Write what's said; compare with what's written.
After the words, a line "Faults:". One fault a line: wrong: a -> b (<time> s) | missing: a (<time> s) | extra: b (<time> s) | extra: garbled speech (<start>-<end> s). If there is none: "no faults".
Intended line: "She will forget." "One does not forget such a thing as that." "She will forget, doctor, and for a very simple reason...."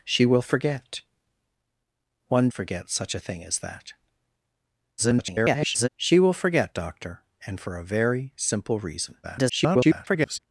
"She will forget." "One forget such a thing as that." [garbled] "She will forget, doctor, and for a very simple reason...." [garbled]
Faults:
missing: does not (2.5 s)
extra: garbled speech (5.0-5.9 s)
extra: garbled speech (9.2-10.4 s)